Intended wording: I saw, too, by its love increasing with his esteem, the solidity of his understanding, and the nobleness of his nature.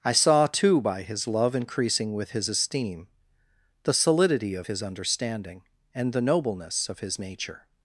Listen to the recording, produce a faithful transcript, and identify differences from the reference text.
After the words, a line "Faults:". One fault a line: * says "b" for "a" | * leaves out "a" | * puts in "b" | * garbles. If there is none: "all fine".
I saw, too, by his love increasing with his esteem, the solidity of his understanding, and the nobleness of his nature.
Faults:
* says "his" for "its"